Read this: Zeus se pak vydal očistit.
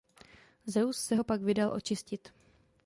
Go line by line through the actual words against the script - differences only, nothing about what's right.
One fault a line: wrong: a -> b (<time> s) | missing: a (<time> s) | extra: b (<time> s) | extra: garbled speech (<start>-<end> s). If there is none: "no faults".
extra: ho (1.1 s)